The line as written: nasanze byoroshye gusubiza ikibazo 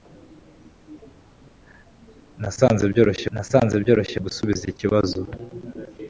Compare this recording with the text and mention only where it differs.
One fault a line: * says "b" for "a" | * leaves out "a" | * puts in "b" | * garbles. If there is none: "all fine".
* puts in "nasanze byoroshye"